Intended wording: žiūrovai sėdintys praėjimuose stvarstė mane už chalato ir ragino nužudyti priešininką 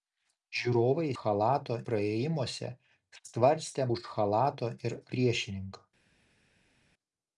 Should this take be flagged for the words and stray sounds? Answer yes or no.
yes